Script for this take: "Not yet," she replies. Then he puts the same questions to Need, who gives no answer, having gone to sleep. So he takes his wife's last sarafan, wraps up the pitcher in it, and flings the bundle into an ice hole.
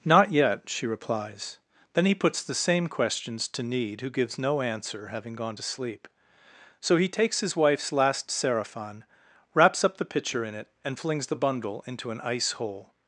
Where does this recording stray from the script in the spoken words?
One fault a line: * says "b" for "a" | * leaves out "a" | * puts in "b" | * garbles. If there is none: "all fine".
all fine